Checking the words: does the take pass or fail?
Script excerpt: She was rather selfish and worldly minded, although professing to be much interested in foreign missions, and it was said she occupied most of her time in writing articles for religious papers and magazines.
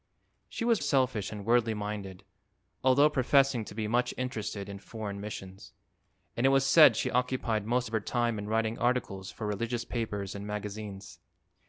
fail